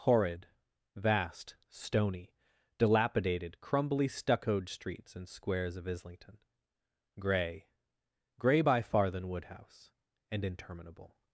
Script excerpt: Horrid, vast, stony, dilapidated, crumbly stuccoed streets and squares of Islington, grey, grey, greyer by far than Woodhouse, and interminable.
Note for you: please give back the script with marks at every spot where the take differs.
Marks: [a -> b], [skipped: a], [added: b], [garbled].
Horrid, vast, stony, dilapidated, crumbly stuccoed streets and squares of Islington, grey, grey, [skipped: greyer] by far than Woodhouse, and interminable.